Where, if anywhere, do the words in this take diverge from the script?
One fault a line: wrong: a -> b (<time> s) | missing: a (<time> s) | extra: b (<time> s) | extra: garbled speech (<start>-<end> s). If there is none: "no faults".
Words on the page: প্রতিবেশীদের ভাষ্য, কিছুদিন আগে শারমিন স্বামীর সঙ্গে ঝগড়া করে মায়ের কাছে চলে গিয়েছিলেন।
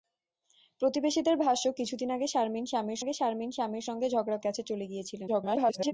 extra: আগে শারমিন স্বামীর (3.0 s)
missing: করে মায়ের (4.4 s)
extra: garbled speech (5.3-5.9 s)